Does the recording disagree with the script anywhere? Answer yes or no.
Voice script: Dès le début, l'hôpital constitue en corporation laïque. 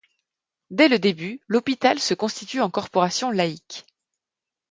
yes